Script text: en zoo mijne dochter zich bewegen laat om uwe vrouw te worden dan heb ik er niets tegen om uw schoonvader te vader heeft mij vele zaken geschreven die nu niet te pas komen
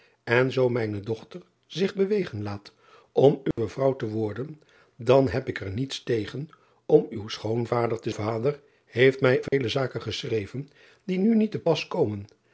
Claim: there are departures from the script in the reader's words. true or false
false